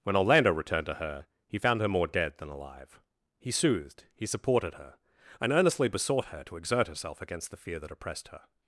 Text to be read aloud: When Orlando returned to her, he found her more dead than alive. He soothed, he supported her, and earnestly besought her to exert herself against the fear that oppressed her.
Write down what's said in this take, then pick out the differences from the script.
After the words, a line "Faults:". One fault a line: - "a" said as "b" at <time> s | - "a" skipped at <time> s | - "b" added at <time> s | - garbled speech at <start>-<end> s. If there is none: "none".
When Orlando returned to her, he found her more dead than alive. He soothed, he supported her, and earnestly besought her to exert herself against the fear that oppressed her.
Faults:
none